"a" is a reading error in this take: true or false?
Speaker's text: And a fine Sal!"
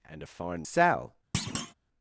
false